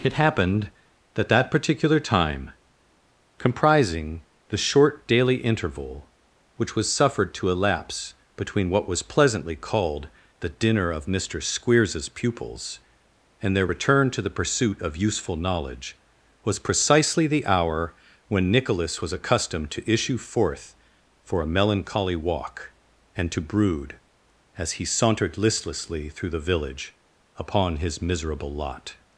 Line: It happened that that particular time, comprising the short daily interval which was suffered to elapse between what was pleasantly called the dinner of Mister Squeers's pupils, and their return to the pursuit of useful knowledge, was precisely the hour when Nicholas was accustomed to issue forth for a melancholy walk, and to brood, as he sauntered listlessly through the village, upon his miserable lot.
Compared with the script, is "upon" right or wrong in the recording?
right